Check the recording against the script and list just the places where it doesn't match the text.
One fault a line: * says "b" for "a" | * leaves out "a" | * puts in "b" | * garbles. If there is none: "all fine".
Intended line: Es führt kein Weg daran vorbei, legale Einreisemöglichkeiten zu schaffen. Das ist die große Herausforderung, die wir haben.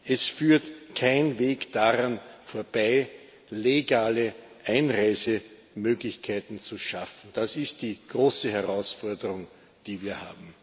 all fine